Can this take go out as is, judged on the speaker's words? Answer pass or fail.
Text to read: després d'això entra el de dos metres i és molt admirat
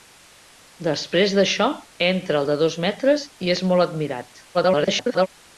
fail